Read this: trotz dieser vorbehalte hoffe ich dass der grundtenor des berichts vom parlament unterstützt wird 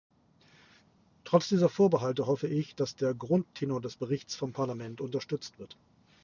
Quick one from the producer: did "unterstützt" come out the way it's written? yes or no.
yes